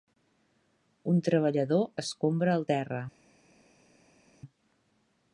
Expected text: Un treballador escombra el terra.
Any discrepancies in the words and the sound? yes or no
no